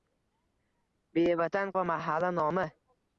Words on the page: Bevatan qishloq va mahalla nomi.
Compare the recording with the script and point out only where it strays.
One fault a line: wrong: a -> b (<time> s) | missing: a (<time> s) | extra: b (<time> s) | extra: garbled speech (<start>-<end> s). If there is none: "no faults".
missing: qishloq (1.8 s)